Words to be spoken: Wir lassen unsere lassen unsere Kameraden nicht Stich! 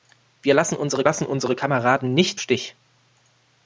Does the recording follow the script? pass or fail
pass